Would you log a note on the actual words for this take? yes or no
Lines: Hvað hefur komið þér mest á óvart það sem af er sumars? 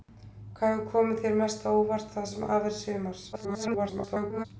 yes